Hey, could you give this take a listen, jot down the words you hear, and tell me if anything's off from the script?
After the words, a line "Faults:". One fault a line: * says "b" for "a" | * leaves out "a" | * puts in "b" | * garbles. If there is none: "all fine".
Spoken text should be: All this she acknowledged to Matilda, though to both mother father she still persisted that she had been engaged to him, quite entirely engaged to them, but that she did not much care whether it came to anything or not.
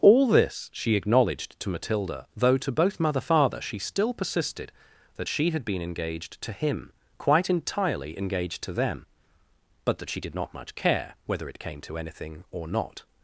All this she acknowledged to Matilda, though to both mother father she still persisted that she had been engaged to him, quite entirely engaged to them, but that she did not much care whether it came to anything or not.
Faults:
all fine